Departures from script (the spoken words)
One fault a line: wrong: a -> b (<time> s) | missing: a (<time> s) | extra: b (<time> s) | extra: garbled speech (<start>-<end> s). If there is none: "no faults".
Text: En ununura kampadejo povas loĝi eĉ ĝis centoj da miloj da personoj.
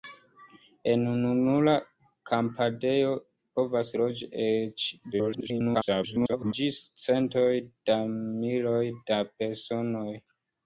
extra: garbled speech (5.1-6.5 s)